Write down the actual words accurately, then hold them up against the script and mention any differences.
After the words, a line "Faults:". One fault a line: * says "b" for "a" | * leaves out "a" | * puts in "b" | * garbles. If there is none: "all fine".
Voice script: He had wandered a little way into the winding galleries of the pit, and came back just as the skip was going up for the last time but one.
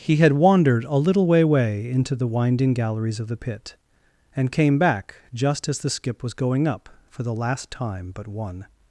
He had wandered a little way way into the winding galleries of the pit, and came back just as the skip was going up for the last time but one.
Faults:
* puts in "way"